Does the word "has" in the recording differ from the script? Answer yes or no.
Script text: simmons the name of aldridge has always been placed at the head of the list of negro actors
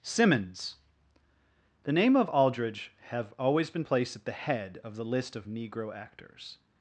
yes